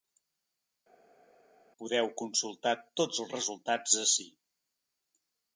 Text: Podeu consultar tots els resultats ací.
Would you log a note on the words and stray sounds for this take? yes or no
no